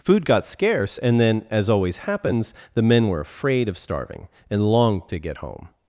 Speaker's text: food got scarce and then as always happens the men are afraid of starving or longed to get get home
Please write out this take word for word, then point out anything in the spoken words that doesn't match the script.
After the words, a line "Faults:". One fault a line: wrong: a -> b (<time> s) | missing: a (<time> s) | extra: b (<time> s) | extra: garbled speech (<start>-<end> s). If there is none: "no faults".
food got scarce and then as always happens the men were afraid of starving and longed to get home
Faults:
wrong: are -> were (3.1 s)
wrong: or -> and (4.5 s)
missing: get (5.4 s)